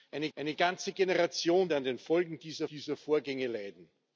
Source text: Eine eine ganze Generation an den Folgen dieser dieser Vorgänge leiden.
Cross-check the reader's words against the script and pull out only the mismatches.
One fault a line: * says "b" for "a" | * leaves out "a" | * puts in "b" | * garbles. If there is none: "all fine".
all fine